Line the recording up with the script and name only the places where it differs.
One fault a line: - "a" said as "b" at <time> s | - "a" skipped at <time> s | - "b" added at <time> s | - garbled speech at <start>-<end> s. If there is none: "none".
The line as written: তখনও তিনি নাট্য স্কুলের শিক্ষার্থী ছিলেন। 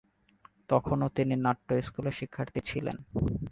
none